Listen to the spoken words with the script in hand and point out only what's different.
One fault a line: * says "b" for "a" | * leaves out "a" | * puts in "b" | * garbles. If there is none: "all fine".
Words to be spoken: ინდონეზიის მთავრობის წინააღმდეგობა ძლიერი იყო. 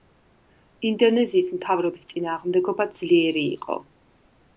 all fine